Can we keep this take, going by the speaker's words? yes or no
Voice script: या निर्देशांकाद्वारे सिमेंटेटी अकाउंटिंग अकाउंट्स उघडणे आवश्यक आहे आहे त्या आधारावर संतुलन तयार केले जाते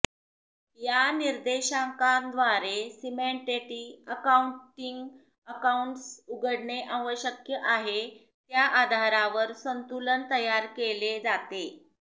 no